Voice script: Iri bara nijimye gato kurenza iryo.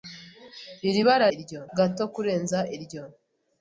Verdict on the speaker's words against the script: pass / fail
fail